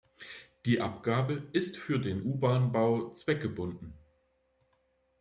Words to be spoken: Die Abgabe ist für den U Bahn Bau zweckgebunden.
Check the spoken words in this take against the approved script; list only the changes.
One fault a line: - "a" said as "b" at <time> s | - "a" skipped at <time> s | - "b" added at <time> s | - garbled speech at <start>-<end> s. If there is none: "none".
none